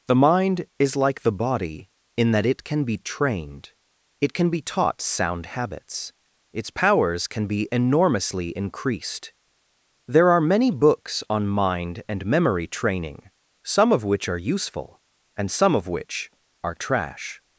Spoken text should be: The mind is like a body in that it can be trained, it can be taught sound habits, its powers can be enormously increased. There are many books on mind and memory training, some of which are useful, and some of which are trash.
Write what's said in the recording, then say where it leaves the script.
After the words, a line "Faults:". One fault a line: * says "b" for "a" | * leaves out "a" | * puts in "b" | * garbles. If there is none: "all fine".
The mind is like the body in that it can be trained, it can be taught sound habits, its powers can be enormously increased. There are many books on mind and memory training, some of which are useful, and some of which are trash.
Faults:
* says "the" for "a"